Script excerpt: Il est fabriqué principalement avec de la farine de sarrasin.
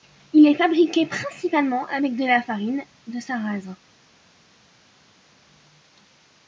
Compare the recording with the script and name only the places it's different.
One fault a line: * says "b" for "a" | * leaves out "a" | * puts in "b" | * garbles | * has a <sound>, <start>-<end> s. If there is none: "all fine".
all fine